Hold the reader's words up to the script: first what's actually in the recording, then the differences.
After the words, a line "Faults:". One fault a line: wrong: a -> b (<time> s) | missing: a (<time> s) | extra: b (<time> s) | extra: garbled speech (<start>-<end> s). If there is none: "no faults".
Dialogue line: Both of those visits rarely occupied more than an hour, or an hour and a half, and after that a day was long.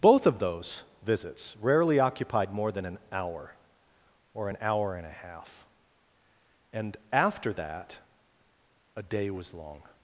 Both of those visits rarely occupied more than an hour, or an hour and a half, and after that a day was long.
Faults:
no faults